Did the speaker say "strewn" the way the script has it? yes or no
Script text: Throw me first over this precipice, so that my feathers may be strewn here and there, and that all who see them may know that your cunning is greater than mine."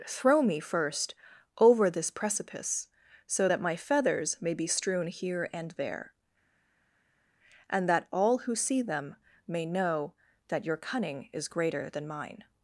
yes